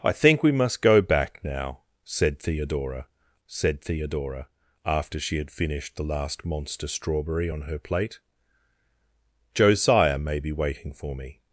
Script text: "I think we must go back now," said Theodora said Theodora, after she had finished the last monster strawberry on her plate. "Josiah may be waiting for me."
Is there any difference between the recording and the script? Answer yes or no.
no